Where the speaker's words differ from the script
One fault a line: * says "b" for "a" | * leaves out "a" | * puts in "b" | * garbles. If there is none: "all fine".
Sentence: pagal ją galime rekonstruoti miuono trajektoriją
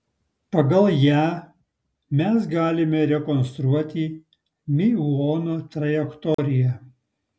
* puts in "mes"